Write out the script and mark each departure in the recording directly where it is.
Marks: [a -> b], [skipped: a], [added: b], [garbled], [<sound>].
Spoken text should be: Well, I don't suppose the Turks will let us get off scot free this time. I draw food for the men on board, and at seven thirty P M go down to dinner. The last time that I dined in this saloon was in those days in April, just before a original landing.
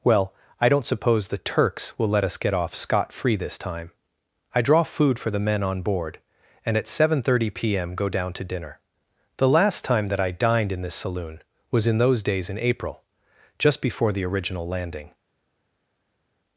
Well, I don't suppose the Turks will let us get off scot free this time. I draw food for the men on board, and at seven thirty P M go down to dinner. The last time that I dined in this saloon was in those days in April, just before [a -> the] original landing.